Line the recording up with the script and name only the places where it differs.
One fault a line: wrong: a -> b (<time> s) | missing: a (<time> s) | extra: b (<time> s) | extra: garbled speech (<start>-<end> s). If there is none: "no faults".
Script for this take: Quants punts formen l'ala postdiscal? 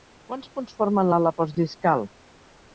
no faults